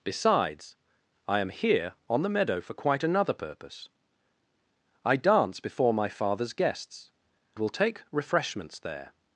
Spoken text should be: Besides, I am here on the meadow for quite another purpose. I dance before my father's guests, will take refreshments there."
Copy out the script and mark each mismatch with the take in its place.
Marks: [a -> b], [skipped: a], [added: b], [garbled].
Besides, I am here on the meadow for quite another purpose. I dance before my father's guests, will take refreshments there."